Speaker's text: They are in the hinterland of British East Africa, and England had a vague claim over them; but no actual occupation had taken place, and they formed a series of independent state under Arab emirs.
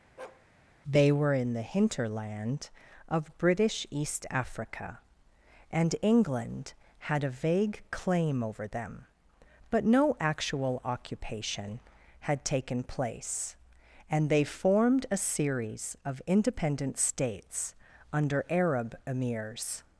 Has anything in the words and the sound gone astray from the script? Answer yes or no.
yes